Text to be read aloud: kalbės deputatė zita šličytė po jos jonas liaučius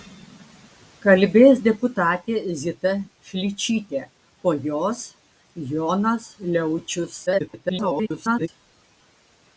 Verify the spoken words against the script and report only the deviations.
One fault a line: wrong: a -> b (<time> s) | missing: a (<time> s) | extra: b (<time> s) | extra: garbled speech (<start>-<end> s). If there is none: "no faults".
extra: garbled speech (7.3-8.5 s)